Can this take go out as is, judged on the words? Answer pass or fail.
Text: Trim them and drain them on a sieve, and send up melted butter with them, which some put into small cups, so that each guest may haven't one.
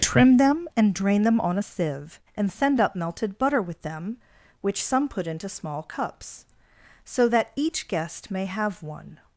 fail